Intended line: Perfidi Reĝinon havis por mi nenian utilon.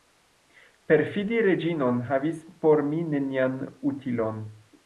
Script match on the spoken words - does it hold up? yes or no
yes